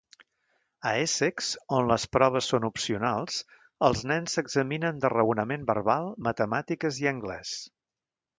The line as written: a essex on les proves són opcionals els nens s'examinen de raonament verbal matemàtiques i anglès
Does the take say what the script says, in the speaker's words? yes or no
yes